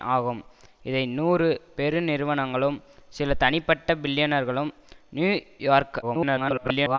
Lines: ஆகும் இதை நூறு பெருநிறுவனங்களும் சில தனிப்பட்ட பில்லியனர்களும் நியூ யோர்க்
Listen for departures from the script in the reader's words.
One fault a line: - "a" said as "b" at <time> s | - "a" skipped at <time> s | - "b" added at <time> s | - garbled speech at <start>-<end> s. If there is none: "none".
- garbled speech at 6.0-7.0 s